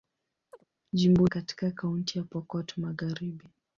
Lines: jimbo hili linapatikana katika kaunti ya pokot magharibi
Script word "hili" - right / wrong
wrong